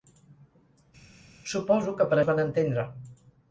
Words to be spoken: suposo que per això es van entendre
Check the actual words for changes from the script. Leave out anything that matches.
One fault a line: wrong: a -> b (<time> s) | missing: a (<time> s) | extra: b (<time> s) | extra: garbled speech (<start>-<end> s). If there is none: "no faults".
missing: això (2.2 s)